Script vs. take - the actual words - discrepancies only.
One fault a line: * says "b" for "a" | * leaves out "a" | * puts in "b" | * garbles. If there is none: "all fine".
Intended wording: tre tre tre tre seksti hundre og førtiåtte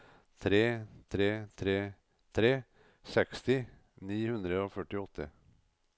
* puts in "ni"